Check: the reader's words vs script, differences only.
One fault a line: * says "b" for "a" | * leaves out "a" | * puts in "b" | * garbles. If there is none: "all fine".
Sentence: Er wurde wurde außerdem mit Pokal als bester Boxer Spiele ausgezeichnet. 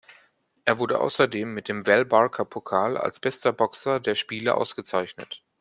* leaves out "wurde"
* puts in "dem Val Barker"
* puts in "der"